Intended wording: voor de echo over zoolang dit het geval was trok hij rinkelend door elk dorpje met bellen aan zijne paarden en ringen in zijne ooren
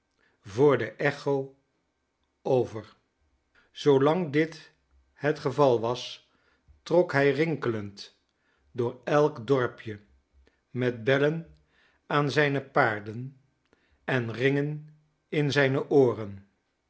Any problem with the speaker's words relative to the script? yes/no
no